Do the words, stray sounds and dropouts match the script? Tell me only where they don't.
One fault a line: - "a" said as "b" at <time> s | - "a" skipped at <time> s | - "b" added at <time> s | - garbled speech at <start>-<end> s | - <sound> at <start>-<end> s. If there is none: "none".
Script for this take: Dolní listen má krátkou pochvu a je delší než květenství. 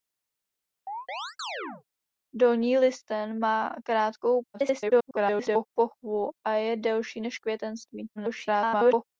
- chirp at 0.9-1.8 s
- garbled speech at 4.5-5.7 s
- garbled speech at 8.2-9.0 s